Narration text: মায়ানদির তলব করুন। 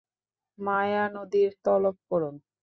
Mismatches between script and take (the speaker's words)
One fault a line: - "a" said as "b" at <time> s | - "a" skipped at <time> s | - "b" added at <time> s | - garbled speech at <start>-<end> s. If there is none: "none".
none